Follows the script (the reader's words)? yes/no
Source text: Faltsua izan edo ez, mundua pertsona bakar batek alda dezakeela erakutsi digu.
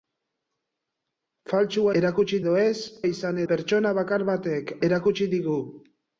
no